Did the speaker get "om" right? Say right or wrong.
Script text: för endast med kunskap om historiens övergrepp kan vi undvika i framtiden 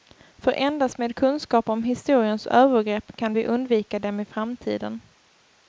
right